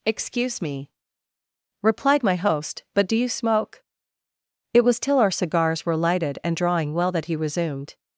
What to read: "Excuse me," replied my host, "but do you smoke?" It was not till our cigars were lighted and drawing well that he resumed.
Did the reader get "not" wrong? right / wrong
wrong